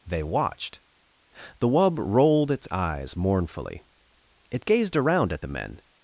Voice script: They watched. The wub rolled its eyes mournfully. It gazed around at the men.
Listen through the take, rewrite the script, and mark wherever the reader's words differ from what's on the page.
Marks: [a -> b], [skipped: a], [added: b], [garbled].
They watched. The wub rolled its eyes mournfully. It gazed around at the men.